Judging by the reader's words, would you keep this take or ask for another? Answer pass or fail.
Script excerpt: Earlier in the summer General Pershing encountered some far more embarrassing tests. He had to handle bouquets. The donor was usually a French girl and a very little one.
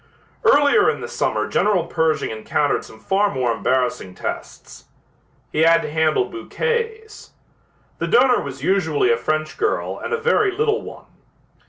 pass